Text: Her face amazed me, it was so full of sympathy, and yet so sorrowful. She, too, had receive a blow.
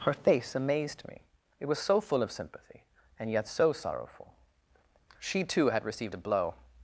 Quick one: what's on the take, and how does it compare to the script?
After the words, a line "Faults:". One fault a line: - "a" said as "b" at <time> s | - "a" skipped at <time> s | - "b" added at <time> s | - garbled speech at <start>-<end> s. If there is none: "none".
Her face amazed me, it was so full of sympathy, and yet so sorrowful. She, too, had received a blow.
Faults:
- "receive" said as "received" at 5.8 s